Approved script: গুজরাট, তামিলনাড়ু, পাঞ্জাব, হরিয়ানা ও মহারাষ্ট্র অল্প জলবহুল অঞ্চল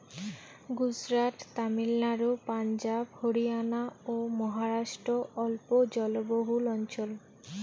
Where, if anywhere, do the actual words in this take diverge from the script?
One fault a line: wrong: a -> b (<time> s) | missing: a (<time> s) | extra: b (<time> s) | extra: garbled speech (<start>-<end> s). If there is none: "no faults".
no faults